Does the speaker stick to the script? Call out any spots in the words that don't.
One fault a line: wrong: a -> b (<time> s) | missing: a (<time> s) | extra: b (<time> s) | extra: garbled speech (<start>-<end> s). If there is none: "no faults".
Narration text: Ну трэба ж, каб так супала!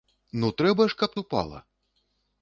missing: так (1.1 s)